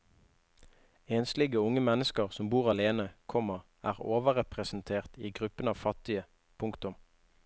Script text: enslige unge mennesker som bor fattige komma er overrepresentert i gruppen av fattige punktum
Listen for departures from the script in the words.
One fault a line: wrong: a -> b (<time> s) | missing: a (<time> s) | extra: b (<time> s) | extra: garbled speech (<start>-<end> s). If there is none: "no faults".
wrong: fattige -> alene (2.7 s)